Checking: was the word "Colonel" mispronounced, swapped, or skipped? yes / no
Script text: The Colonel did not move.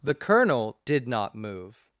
no